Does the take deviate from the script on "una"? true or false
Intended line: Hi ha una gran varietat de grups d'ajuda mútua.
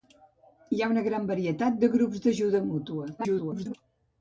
false